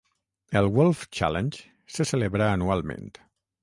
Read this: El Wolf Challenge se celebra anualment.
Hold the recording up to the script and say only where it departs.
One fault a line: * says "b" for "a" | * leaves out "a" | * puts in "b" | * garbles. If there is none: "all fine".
all fine